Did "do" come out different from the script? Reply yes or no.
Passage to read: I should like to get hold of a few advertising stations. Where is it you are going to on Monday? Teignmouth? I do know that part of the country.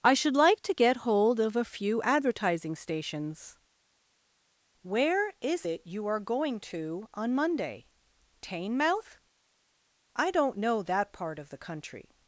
yes